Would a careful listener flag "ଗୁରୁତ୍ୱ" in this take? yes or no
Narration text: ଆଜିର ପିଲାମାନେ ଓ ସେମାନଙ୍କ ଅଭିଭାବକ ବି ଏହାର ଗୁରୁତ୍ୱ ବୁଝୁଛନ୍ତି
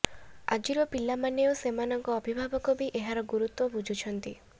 no